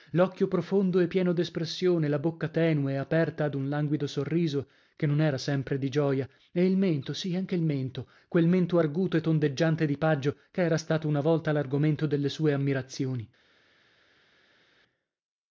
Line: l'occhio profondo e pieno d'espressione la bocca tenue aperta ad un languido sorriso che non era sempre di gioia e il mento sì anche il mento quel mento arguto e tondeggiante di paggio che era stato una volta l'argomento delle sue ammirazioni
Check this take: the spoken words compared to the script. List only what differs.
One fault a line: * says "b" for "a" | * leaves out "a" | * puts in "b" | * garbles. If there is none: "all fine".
all fine